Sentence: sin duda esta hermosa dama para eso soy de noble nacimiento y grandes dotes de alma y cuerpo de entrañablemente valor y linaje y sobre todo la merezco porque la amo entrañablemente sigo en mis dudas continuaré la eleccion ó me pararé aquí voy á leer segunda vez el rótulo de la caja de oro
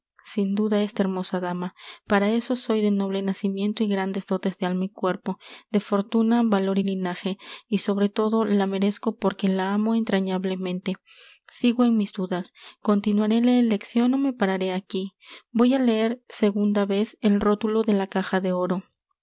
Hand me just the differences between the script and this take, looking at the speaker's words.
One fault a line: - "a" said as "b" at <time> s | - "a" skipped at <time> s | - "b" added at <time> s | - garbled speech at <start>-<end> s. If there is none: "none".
- "entrañablemente" said as "fortuna" at 5.8 s